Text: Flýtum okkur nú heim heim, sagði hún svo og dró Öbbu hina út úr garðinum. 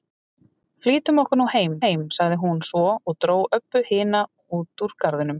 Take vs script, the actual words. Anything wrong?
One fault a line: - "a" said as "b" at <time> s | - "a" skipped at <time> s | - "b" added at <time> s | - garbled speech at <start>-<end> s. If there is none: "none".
none